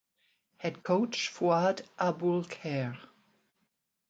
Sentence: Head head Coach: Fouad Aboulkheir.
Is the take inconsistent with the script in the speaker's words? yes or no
yes